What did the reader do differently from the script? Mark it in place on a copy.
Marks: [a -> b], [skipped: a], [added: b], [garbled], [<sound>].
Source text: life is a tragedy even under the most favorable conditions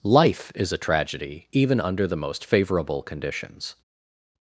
life is a tragedy even under the most favorable conditions